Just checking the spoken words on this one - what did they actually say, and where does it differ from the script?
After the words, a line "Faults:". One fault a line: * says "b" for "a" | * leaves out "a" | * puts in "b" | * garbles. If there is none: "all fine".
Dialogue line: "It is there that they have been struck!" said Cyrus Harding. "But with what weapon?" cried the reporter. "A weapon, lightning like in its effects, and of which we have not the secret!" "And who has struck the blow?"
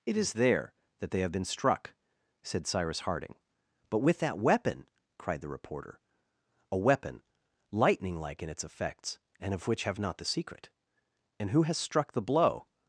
"It is there that they have been struck!" said Cyrus Harding. "But with that weapon?" cried the reporter. "A weapon, lightning like in its effects, and of which have not the secret!" "And who has struck the blow?"
Faults:
* says "that" for "what"
* leaves out "we"